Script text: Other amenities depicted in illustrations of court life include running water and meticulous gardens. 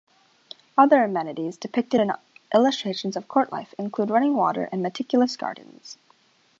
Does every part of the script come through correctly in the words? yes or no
yes